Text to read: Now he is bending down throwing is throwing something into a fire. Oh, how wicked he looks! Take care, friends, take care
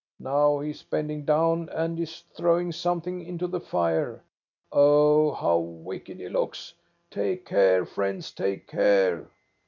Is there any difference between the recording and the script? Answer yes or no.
yes